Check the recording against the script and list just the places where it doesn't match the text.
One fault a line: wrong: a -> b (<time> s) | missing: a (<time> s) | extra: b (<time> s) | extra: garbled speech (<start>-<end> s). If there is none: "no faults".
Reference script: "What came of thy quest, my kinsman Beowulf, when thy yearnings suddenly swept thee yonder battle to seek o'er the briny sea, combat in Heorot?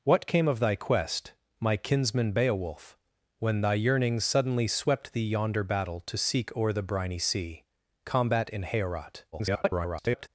extra: garbled speech (9.3-10.3 s)